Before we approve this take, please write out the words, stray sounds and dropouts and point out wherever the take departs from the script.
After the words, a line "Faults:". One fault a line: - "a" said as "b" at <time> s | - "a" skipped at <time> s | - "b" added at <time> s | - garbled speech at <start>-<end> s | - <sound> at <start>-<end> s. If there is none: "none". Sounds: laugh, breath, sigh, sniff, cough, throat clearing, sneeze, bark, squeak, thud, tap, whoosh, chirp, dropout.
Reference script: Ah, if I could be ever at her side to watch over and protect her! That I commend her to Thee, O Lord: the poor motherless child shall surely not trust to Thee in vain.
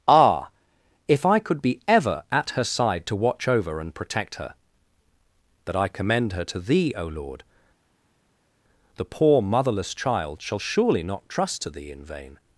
Ah, if I could be ever at her side to watch over and protect her! That I commend her to Thee, O Lord: the poor motherless child shall surely not trust to Thee in vain.
Faults:
none